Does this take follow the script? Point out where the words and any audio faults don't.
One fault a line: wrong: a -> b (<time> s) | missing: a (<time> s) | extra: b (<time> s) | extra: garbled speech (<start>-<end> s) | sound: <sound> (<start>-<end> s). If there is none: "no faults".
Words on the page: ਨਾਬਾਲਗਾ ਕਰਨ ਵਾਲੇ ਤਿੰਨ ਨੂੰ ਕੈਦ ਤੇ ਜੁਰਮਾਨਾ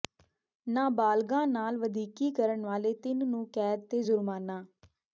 extra: ਨਾਲ ਵਧੀਕੀ (1.4 s)